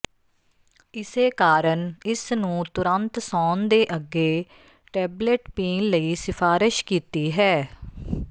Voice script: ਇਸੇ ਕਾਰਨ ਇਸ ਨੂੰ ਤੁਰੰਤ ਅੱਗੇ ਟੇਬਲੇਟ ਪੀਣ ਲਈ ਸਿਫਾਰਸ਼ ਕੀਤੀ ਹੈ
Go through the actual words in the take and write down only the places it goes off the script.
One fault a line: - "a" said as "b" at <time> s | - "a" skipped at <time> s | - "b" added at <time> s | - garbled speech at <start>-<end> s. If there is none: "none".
- "ਸੌਣ ਦੇ" added at 3.2 s